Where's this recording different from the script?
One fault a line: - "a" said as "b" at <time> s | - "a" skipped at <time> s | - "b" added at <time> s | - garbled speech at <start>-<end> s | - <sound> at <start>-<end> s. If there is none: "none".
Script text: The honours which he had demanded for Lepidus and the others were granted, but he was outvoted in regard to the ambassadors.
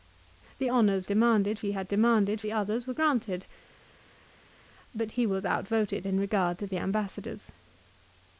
- "which" said as "demanded" at 1.1 s
- "for Lepidus and" skipped at 2.4 s